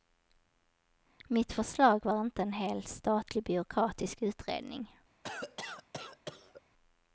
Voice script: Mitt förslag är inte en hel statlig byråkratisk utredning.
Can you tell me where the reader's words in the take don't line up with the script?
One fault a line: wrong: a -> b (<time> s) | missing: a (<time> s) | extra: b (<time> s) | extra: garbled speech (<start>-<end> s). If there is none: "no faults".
wrong: är -> var (2.0 s)